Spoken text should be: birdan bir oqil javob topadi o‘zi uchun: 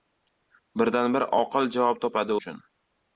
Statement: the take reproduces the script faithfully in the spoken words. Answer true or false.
false